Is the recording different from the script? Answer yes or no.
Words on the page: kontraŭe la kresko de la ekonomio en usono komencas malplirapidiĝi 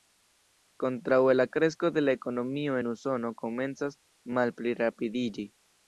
no